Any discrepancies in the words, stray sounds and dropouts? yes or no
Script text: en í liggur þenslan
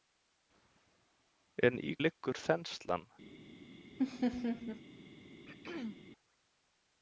yes